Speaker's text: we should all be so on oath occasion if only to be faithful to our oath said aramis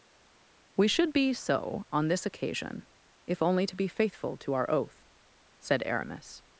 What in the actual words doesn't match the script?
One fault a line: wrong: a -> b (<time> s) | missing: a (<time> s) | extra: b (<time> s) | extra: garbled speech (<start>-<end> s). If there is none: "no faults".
missing: all (1.1 s)
wrong: oath -> this (2.1 s)